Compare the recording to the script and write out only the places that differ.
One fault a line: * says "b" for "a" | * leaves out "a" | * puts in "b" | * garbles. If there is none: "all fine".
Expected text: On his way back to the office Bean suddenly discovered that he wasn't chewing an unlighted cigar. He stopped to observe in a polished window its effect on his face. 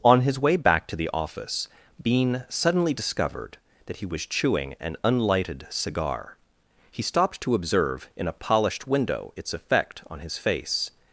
* says "was" for "wasn't"